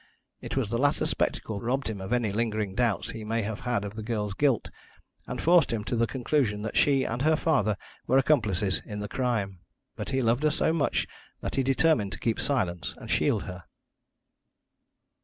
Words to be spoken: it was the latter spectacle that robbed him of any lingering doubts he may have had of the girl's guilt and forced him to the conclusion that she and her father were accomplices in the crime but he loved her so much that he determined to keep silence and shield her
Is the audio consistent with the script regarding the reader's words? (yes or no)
no